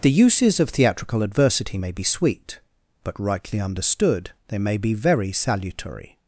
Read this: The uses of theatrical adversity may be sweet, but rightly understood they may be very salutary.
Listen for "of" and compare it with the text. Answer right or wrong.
right